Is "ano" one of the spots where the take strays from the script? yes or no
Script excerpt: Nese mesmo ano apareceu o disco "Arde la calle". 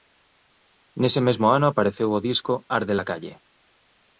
no